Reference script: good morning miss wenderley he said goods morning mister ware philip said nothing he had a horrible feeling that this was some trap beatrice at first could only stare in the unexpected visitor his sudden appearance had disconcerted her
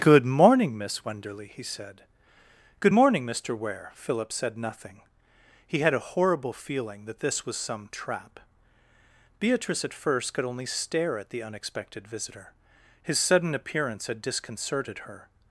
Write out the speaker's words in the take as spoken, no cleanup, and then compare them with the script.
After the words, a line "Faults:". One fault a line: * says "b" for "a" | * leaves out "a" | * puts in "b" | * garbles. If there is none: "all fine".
good morning miss wenderley he said good morning mister ware philip said nothing he had a horrible feeling that this was some trap beatrice at first could only stare at the unexpected visitor his sudden appearance had disconcerted her
Faults:
* says "good" for "goods"
* says "at" for "in"